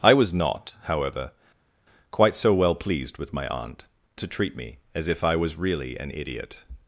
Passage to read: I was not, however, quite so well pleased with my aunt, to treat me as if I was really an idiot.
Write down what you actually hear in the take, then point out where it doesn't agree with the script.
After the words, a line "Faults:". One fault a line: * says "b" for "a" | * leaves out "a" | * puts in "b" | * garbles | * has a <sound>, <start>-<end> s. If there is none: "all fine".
I was not, however, quite so well pleased with my aunt, to treat me as if I was really an idiot.
Faults:
all fine